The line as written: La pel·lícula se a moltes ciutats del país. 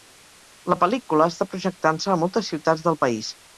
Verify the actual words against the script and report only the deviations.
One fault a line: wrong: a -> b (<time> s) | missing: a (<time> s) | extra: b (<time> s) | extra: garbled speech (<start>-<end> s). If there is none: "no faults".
extra: està projectant (1.3 s)